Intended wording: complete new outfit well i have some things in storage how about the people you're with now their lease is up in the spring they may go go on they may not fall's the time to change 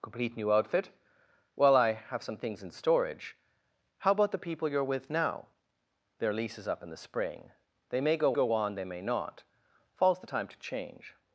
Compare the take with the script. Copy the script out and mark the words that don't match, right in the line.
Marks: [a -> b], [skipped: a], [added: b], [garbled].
complete new outfit well i have some things in storage how about the people you're with now their lease is up in the spring they may go go on they may not fall's the time to change